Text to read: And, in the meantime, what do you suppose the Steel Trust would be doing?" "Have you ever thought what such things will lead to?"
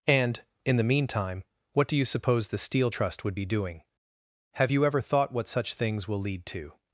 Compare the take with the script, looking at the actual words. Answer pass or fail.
pass